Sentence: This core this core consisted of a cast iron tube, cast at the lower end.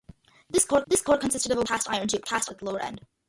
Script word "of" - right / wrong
right